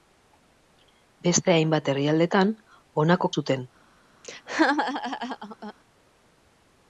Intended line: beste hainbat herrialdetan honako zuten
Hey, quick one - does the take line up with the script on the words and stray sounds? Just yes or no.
no